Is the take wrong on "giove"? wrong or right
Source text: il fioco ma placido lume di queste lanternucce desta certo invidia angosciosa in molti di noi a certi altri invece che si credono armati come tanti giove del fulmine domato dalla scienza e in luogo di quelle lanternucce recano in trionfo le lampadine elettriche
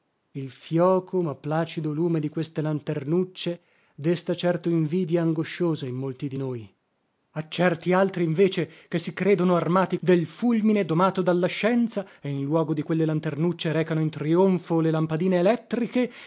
wrong